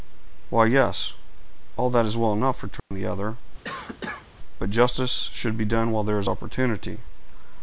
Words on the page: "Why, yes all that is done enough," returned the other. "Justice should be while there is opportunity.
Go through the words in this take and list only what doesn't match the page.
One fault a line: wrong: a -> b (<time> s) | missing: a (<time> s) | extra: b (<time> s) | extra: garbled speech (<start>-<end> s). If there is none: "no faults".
wrong: done -> well (2.2 s)
extra: But (4.6 s)
extra: done (5.6 s)